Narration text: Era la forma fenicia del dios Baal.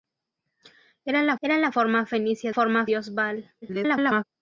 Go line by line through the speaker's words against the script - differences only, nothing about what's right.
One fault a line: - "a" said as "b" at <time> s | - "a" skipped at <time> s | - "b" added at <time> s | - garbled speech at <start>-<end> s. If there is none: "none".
- "era la" added at 1.4 s
- "del" said as "forma" at 2.5 s
- garbled speech at 3.6-4.2 s